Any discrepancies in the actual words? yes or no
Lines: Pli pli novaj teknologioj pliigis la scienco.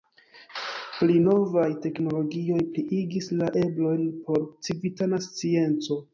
yes